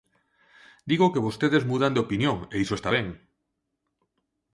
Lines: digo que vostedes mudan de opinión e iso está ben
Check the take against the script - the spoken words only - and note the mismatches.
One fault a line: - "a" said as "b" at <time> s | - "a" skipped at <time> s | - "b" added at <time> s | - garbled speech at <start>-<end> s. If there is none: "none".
none